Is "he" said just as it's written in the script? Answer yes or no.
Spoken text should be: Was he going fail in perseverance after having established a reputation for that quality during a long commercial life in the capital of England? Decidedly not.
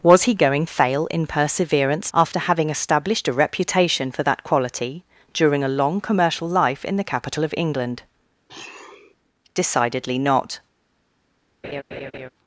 yes